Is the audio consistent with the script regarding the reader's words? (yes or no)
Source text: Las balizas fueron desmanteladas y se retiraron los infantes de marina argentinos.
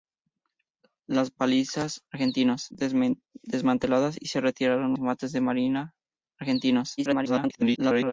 no